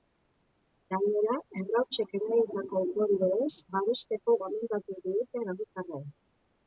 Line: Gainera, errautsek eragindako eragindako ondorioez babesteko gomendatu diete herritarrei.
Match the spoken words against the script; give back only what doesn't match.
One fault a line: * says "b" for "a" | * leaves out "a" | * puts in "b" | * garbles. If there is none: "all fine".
* leaves out "eragindako"